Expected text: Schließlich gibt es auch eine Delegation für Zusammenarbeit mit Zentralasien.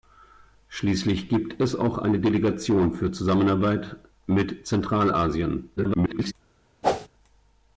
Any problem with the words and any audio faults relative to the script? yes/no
yes